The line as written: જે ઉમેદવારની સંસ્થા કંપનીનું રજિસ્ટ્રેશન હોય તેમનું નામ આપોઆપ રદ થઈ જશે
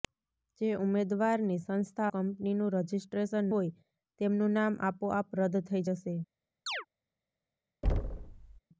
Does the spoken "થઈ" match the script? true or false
true